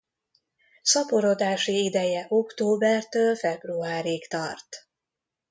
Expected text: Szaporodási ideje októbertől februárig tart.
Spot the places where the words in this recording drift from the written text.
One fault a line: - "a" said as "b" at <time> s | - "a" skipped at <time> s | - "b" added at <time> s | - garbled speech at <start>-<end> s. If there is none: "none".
none